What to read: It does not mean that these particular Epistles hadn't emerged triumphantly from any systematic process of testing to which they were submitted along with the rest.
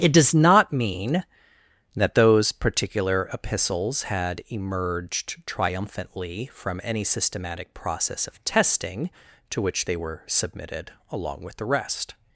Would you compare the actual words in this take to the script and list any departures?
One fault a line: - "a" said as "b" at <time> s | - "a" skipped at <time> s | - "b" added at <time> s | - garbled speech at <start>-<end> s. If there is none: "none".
- "these" said as "those" at 2.1 s
- "hadn't" said as "had" at 4.0 s